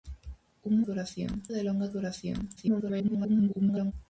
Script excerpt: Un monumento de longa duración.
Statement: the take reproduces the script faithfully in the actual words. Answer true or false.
false